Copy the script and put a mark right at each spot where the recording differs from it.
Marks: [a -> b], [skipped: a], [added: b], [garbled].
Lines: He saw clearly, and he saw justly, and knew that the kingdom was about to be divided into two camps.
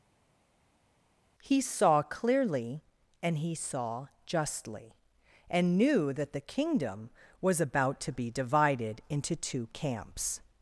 He saw clearly, and he saw justly, and knew that the kingdom was about to be divided into two camps.